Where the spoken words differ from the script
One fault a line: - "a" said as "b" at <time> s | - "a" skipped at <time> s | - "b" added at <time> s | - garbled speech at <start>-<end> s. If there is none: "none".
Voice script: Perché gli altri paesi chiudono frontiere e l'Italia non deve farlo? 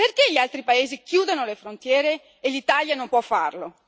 - "le" added at 1.4 s
- "deve" said as "può" at 3.1 s